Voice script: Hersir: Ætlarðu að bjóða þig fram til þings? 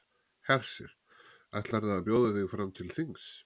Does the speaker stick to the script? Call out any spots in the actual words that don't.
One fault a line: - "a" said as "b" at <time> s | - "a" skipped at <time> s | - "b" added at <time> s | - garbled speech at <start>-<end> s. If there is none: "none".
none